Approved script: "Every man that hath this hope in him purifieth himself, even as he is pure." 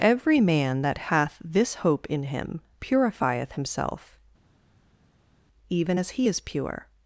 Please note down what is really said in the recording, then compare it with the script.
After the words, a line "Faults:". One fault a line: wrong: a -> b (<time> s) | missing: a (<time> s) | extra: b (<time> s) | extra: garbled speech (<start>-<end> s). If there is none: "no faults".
"Every man that hath this hope in him purifieth himself, even as he is pure."
Faults:
no faults